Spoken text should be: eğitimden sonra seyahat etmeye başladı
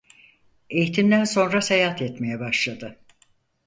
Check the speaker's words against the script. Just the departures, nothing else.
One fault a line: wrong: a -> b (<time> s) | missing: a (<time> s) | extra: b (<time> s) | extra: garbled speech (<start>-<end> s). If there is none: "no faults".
no faults